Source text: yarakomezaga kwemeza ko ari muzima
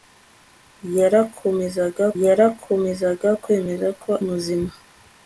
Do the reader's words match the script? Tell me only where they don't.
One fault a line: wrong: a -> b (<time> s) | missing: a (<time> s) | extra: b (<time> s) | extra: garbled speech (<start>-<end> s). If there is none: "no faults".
extra: yarakomezaga (2.2 s)
missing: ari (4.1 s)